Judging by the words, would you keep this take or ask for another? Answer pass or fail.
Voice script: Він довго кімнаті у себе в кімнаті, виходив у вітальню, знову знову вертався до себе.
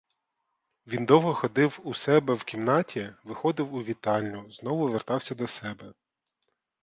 fail